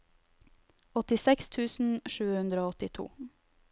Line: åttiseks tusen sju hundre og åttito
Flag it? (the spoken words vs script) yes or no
no